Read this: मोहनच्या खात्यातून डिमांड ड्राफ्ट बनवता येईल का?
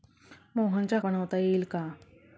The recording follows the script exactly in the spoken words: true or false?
false